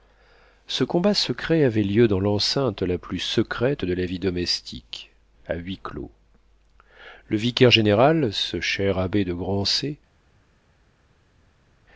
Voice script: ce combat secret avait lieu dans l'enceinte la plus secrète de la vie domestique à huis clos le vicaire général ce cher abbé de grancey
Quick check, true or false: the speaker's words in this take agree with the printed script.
true